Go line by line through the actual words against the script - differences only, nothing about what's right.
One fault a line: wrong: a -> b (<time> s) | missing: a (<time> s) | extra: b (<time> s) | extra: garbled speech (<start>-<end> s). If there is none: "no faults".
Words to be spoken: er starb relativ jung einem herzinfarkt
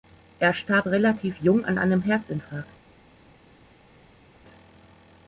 extra: an (1.6 s)